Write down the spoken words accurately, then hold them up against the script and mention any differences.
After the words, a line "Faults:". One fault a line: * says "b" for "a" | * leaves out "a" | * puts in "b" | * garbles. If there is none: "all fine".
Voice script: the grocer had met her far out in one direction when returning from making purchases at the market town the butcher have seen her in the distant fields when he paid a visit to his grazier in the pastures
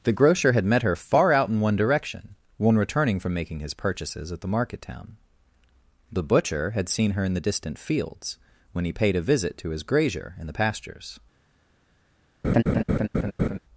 the grocer had met her far out in one direction when returning from making his purchases at the market town the butcher had seen her in the distant fields when he paid a visit to his grazier in the pastures
Faults:
* puts in "his"
* says "had" for "have"